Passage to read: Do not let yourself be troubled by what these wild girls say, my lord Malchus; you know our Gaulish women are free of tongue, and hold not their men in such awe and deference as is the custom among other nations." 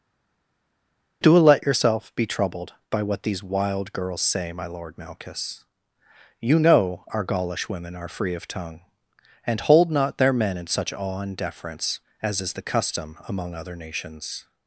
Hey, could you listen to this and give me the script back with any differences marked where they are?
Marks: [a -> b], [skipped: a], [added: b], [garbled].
Do [skipped: not] let yourself be troubled by what these wild girls say, my lord Malchus; you know our Gaulish women are free of tongue, and hold not their men in such awe and deference as is the custom among other nations."